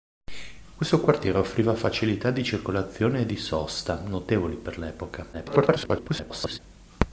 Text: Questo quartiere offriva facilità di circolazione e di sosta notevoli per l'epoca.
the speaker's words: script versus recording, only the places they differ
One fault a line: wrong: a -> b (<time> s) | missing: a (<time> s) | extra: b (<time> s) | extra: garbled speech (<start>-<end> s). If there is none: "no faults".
extra: garbled speech (5.3-6.6 s)